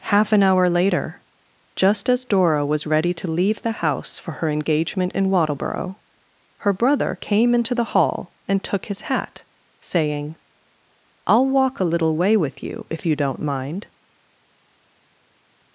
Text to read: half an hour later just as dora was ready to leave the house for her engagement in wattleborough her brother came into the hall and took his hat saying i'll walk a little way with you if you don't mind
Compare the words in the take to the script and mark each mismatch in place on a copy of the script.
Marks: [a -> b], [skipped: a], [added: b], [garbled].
half an hour later just as dora was ready to leave the house for her engagement in wattleborough her brother came into the hall and took his hat saying i'll walk a little way with you if you don't mind